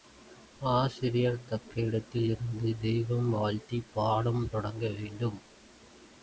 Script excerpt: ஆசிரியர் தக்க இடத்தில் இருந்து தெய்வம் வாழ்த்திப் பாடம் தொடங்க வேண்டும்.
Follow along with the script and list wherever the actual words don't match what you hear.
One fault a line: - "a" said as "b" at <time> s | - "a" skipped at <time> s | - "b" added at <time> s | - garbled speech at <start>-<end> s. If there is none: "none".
none